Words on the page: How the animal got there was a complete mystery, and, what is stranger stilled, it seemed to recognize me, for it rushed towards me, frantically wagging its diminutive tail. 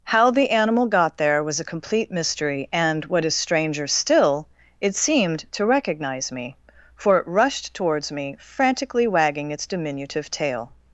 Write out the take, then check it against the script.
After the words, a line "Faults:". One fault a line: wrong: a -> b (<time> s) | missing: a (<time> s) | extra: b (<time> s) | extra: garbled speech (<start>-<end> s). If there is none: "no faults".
How the animal got there was a complete mystery, and, what is stranger still, it seemed to recognize me, for it rushed towards me, frantically wagging its diminutive tail.
Faults:
wrong: stilled -> still (3.9 s)